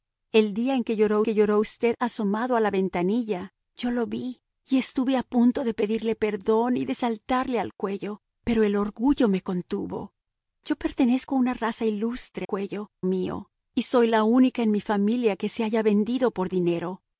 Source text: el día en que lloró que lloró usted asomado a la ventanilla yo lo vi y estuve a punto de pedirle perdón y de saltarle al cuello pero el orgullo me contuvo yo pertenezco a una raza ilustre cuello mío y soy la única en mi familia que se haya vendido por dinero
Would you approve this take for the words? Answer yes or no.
yes